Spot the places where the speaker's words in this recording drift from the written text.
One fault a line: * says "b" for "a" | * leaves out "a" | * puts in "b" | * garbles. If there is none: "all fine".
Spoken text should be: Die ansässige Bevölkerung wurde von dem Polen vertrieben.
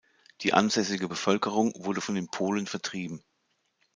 * says "den" for "dem"